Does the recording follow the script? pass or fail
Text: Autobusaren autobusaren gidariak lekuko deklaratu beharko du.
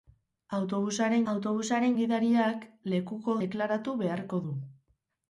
pass